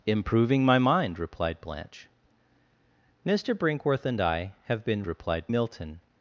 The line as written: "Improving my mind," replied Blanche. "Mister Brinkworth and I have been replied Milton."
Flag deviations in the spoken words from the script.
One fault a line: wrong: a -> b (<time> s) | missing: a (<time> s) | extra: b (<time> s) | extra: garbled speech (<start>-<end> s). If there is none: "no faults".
no faults